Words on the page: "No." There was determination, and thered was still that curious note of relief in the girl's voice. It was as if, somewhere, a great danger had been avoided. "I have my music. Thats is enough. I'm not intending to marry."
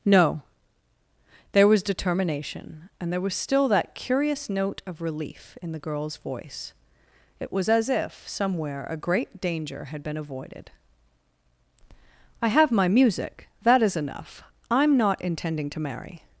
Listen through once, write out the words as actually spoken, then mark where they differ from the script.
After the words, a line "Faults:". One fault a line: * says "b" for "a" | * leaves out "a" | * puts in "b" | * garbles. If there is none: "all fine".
"No." There was determination, and there was still that curious note of relief in the girl's voice. It was as if, somewhere, a great danger had been avoided. "I have my music. That is enough. I'm not intending to marry."
Faults:
* says "there" for "thered"
* says "That" for "Thats"